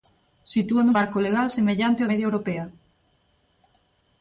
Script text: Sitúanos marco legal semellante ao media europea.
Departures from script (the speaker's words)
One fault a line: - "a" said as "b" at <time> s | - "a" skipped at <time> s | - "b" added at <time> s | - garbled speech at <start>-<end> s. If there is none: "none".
none